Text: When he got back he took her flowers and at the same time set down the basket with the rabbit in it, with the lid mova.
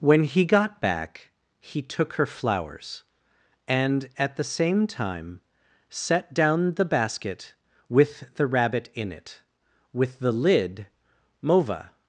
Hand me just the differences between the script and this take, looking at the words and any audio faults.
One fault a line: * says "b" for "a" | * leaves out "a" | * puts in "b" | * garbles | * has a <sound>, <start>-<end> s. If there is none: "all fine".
all fine